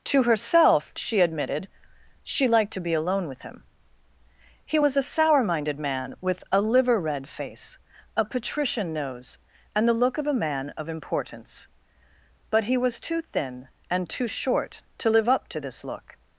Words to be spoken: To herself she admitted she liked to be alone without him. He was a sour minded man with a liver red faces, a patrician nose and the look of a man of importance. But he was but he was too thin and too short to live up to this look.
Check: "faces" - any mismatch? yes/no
yes